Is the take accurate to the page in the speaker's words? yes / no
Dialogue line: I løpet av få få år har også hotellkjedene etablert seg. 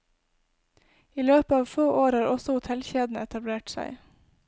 no